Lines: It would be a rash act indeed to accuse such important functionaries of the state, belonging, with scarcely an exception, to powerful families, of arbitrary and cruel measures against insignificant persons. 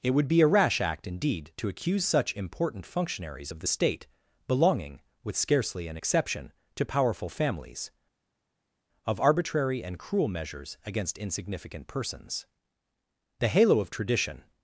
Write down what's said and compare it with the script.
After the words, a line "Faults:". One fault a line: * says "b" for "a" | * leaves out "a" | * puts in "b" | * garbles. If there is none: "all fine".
It would be a rash act indeed to accuse such important functionaries of the state, belonging, with scarcely an exception, to powerful families, of arbitrary and cruel measures against insignificant persons. The halo of tradition
Faults:
* puts in "The halo of tradition"